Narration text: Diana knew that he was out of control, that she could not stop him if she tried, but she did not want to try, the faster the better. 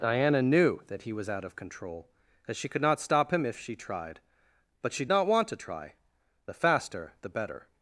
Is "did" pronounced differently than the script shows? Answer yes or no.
yes